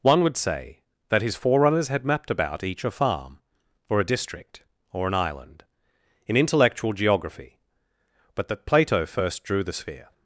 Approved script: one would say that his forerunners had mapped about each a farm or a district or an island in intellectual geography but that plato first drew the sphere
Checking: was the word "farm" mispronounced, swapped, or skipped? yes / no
no